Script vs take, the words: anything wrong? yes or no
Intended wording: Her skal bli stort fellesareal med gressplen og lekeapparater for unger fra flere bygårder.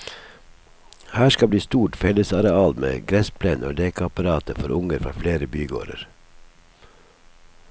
no